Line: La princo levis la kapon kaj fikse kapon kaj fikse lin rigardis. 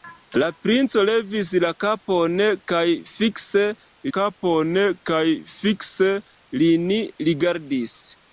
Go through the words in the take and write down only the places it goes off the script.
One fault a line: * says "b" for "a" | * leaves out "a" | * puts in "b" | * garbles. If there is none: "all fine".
all fine